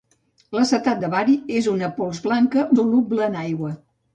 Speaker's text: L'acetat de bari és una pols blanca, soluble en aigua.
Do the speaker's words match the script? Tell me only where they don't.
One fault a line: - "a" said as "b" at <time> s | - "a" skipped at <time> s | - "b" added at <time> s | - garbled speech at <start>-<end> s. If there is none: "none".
none